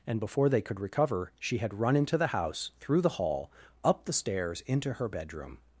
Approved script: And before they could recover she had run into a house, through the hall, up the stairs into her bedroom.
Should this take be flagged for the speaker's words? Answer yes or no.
yes